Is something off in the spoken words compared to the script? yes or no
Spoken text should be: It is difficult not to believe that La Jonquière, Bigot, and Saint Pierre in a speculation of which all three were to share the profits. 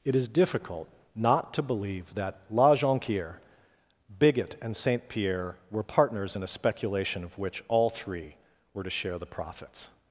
yes